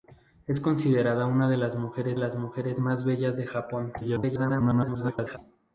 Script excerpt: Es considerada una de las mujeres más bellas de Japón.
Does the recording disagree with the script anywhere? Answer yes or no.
yes